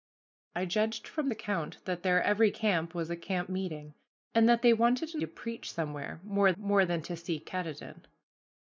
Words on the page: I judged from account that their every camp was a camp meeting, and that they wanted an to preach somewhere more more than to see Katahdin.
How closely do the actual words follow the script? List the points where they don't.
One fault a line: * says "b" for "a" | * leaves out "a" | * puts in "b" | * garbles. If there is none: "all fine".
all fine